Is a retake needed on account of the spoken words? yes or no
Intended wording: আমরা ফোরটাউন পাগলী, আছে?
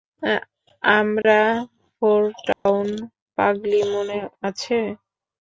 yes